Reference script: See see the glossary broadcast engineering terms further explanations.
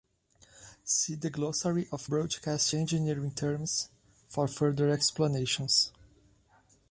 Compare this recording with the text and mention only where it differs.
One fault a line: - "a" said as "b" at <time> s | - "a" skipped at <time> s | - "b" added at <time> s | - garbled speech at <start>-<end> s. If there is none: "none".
- "see" skipped at 1.1 s
- "of" added at 1.9 s
- "for" added at 4.3 s